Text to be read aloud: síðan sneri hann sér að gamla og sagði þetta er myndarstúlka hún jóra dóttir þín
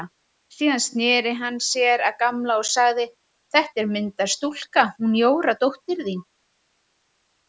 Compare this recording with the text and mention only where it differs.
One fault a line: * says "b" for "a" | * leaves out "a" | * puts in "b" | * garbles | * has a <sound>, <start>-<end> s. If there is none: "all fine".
all fine